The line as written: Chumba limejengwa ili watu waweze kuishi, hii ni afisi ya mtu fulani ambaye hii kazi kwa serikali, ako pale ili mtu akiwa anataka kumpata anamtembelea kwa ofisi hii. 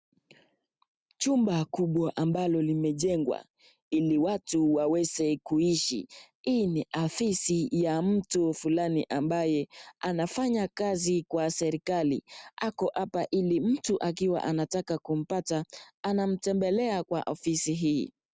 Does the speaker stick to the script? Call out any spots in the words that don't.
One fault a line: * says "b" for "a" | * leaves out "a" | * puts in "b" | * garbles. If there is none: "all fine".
* puts in "kubwa ambalo"
* says "anafanya" for "hii"
* says "hapa" for "pale"